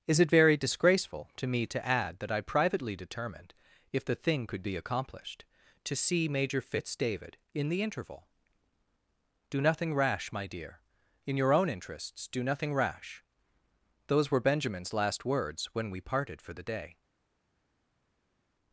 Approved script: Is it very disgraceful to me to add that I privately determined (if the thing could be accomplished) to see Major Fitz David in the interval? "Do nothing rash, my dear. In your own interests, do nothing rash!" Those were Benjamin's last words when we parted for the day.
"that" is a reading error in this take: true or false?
false